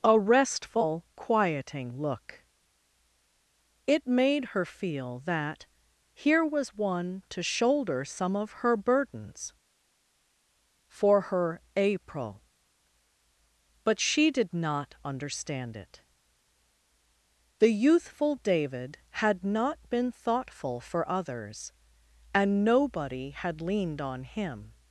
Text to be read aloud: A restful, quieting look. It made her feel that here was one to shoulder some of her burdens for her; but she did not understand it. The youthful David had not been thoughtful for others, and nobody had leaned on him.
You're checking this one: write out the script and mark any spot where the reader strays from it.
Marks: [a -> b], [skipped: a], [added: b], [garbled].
A restful, quieting look. It made her feel that here was one to shoulder some of her burdens for her; [added: april] but she did not understand it. The youthful David had not been thoughtful for others, and nobody had leaned on him.